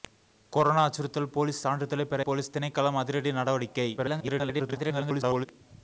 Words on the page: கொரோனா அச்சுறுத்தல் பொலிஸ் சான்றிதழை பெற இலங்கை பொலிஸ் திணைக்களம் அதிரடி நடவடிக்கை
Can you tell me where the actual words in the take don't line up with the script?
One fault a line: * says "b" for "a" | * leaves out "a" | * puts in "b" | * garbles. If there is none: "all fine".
* leaves out "இலங்கை"
* garbles